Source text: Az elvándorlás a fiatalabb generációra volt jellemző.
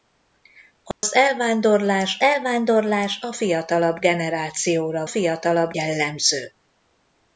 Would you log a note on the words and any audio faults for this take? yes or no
yes